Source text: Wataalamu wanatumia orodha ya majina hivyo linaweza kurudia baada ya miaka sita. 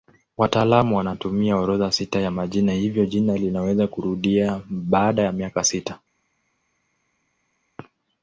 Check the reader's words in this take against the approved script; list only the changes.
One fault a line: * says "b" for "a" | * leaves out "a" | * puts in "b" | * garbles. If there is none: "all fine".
* puts in "sita"
* puts in "jina"